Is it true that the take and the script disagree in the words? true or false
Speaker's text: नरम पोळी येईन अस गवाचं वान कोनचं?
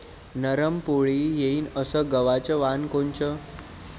false